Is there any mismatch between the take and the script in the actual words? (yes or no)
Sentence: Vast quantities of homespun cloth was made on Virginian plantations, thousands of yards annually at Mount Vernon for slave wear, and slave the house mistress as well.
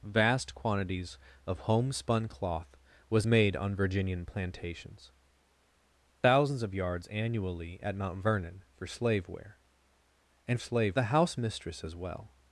no